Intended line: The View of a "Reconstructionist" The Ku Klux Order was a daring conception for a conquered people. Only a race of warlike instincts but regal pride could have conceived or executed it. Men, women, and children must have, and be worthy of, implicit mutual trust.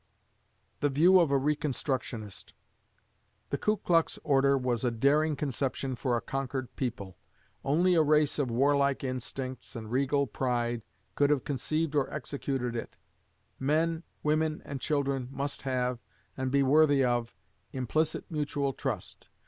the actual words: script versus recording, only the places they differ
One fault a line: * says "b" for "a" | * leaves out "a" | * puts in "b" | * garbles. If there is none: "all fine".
* says "and" for "but"